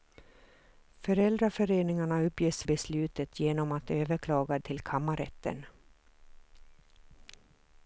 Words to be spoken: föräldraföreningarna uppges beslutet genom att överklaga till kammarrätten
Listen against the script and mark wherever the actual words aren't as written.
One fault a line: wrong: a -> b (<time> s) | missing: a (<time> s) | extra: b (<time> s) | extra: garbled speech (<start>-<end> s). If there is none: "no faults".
no faults